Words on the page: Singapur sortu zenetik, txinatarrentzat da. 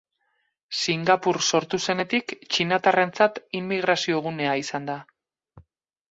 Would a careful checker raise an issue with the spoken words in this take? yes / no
yes